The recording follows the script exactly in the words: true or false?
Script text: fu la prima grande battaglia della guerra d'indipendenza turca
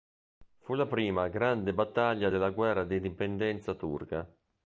true